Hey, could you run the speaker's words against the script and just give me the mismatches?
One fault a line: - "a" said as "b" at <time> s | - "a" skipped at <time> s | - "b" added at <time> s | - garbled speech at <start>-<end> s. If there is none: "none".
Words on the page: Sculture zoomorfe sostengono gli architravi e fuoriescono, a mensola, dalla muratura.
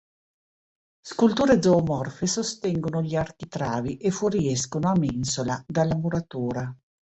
none